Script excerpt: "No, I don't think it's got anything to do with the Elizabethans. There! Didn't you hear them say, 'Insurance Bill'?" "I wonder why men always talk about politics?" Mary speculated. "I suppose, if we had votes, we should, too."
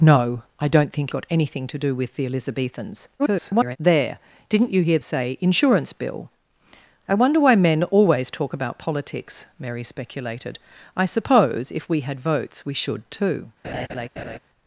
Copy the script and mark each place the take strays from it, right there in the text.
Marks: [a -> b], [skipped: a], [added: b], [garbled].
"No, I don't think [skipped: it's] got anything to do with the Elizabethans. [garbled] There! Didn't you hear [skipped: them] say, 'Insurance Bill'?" "I wonder why men always talk about politics?" Mary speculated. "I suppose, if we had votes, we should, too."